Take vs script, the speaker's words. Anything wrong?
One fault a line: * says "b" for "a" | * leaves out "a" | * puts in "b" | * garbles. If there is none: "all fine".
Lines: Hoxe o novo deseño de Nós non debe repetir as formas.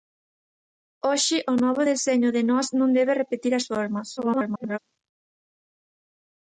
* garbles